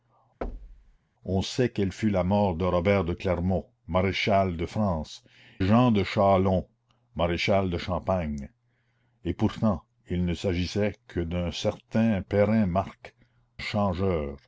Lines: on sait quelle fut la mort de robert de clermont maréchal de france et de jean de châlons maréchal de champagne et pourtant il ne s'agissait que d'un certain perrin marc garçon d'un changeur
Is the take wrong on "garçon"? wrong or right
wrong